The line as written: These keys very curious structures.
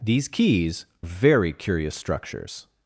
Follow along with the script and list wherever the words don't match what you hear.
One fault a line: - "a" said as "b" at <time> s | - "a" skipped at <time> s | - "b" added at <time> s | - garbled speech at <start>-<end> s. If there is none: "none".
none